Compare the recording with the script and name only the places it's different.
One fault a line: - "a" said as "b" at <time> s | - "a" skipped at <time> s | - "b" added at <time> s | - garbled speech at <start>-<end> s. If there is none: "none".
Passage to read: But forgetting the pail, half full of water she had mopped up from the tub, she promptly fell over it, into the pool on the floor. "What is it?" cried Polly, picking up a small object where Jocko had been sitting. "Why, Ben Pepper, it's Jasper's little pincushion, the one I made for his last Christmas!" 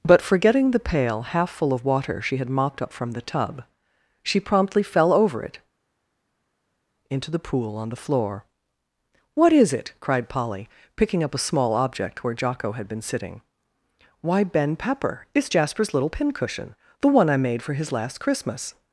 none